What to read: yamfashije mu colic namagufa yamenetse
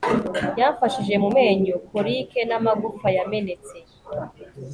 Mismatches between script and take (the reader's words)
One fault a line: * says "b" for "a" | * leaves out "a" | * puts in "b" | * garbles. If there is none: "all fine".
* puts in "menyo"